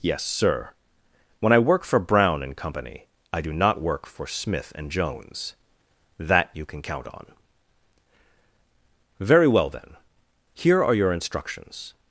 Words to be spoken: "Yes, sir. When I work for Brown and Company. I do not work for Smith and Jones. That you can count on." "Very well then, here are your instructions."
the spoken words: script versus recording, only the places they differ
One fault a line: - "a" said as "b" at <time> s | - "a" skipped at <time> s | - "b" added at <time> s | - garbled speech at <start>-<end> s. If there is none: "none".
none